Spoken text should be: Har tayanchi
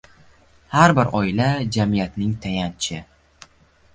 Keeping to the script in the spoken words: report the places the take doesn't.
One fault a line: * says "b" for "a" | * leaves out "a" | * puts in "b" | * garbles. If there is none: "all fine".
* puts in "bir oila jamiyatning"